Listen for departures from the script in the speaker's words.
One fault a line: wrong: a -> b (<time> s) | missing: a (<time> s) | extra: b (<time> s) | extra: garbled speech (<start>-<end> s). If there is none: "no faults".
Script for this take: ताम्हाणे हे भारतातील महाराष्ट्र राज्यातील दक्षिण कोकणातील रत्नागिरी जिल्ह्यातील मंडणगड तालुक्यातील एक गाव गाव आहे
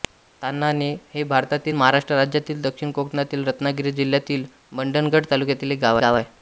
no faults